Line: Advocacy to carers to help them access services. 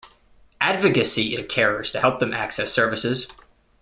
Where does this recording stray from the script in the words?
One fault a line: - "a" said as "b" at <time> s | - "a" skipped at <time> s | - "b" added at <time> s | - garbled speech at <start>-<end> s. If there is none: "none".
none